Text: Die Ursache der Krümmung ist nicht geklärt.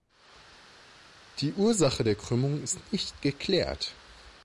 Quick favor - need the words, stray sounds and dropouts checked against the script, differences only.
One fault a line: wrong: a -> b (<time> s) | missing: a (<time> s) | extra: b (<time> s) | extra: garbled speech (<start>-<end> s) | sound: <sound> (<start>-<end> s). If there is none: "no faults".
no faults